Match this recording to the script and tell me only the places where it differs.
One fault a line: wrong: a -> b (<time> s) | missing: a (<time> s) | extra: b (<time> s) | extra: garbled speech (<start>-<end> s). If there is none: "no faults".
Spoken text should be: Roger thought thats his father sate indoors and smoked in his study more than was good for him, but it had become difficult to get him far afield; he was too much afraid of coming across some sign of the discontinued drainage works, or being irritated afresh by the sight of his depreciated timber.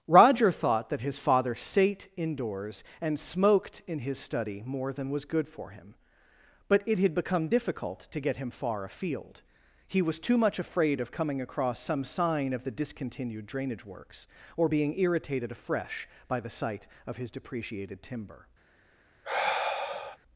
wrong: thats -> that (0.9 s)